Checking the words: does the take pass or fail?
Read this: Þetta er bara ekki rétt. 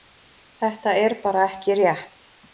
pass